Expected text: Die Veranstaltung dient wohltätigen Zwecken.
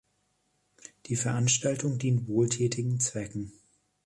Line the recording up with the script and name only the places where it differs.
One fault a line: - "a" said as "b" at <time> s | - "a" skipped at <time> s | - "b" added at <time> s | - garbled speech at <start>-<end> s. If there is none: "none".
none